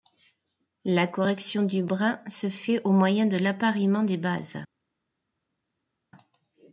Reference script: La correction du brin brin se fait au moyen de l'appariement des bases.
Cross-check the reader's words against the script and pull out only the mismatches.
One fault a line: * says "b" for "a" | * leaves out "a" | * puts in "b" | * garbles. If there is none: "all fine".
* leaves out "brin"